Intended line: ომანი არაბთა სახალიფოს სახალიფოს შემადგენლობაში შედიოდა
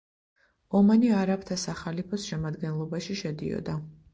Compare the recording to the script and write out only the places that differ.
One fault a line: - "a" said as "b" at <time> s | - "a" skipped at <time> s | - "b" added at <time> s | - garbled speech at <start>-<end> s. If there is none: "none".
- "სახალიფოს" skipped at 2.3 s